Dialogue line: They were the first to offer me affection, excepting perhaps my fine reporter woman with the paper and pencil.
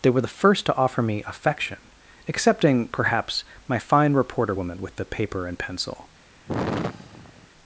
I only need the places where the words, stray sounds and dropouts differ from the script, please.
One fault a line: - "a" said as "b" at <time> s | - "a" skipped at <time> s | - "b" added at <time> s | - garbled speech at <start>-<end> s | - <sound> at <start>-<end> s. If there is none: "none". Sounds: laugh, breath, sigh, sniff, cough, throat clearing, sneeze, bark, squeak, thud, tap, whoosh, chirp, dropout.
- sigh at 6.5-7.5 s